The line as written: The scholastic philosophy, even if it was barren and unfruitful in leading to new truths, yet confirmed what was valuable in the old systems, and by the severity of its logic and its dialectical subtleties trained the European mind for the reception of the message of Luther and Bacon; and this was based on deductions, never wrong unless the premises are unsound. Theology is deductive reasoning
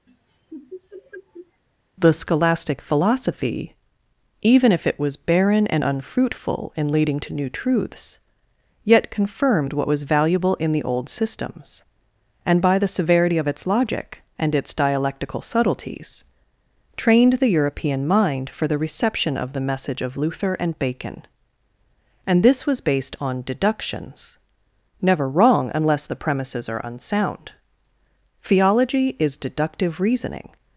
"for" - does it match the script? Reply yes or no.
yes